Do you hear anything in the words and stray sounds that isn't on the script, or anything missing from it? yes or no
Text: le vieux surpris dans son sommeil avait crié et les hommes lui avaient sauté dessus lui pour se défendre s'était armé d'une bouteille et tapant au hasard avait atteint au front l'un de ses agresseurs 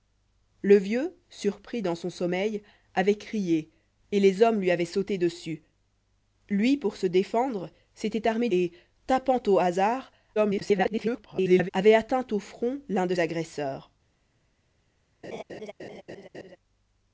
yes